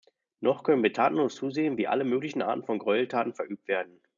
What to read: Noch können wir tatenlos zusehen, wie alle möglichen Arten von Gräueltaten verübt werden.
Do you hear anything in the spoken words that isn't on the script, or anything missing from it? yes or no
no